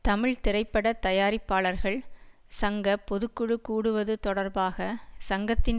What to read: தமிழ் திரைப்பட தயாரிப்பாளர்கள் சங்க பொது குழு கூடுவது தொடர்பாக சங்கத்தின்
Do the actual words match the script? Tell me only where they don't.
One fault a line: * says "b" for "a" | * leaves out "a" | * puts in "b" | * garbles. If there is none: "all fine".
all fine